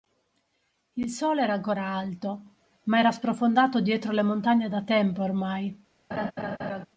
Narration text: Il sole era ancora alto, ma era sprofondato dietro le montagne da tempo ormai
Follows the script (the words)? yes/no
yes